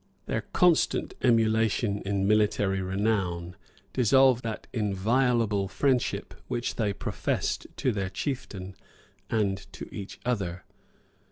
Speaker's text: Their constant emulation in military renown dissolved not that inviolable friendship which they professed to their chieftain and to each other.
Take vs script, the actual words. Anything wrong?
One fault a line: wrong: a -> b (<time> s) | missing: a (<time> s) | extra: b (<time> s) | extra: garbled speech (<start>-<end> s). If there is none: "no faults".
missing: not (4.4 s)